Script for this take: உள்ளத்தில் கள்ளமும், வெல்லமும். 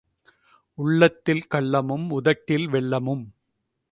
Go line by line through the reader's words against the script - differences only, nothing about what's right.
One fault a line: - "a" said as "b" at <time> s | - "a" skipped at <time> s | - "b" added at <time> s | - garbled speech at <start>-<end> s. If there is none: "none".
- "உதட்டில்" added at 2.1 s